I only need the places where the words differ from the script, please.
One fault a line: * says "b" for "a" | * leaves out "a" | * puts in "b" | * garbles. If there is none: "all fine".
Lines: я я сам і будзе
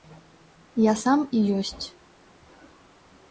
* leaves out "я"
* says "ёсць" for "будзе"